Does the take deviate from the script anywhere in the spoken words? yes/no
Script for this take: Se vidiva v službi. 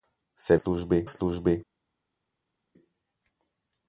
yes